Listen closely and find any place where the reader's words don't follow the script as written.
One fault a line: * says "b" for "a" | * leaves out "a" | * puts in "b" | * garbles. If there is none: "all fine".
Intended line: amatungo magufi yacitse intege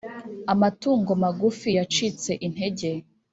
all fine